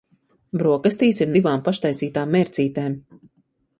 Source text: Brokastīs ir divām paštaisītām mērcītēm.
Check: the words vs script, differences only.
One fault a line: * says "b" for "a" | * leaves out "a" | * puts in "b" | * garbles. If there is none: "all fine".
all fine